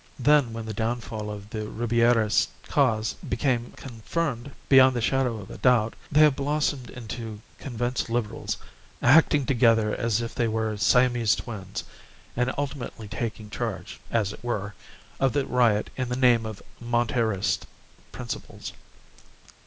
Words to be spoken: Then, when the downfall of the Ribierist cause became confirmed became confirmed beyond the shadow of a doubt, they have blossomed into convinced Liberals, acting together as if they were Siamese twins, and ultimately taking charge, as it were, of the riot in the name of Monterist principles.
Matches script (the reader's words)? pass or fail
fail